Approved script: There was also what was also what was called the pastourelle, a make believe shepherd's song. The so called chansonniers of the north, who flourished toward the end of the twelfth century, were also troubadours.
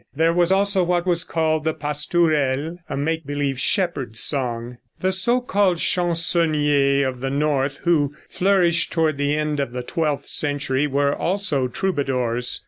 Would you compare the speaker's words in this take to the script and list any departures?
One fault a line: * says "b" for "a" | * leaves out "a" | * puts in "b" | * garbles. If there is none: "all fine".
* leaves out "also what was"